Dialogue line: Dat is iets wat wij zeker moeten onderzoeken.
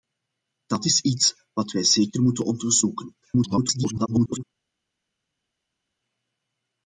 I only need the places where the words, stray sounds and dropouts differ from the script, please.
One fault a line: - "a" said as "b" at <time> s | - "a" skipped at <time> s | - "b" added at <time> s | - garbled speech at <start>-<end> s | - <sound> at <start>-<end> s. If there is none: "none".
- garbled speech at 3.2-4.4 s